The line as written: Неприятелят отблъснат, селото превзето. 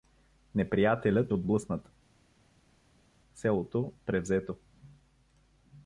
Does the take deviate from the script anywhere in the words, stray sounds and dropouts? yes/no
no